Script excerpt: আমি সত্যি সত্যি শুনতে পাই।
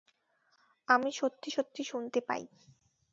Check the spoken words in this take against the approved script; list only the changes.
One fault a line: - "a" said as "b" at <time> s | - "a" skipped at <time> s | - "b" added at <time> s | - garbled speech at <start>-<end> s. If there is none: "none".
none